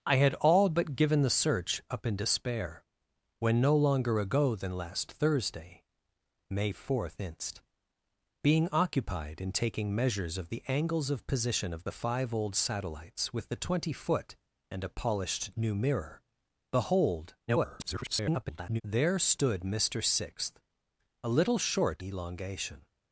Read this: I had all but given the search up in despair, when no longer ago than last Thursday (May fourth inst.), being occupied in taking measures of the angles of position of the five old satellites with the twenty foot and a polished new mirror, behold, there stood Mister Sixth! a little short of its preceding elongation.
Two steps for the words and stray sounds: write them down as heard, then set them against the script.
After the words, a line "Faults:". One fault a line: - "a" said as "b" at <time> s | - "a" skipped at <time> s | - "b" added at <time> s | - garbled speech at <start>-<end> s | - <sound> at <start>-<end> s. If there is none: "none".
I had all but given the search up in despair, when no longer ago than last Thursday (May fourth inst.), being occupied in taking measures of the angles of position of the five old satellites with the twenty foot and a polished new mirror, behold, [garbled] there stood Mister Sixth! a little short elongation.
Faults:
- garbled speech at 17.5-18.8 s
- "of its preceding" skipped at 22.0 s